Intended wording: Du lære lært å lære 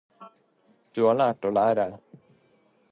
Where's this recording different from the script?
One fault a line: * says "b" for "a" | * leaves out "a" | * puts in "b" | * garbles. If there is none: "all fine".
* says "har" for "lære"